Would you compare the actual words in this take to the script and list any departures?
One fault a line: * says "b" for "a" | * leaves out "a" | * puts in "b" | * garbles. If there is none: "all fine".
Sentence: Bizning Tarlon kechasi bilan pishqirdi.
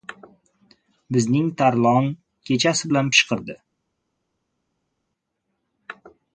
all fine